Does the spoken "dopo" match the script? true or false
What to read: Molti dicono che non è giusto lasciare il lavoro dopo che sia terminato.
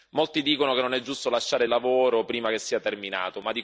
false